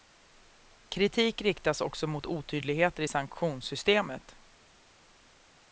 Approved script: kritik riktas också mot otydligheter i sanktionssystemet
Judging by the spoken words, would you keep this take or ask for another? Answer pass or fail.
pass